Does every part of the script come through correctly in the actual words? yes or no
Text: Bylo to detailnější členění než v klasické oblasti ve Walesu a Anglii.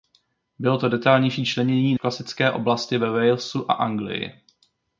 no